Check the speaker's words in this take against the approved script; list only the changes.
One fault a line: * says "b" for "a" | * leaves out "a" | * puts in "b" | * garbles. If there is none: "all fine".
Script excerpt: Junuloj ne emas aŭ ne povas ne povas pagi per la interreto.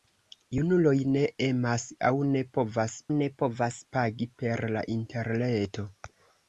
all fine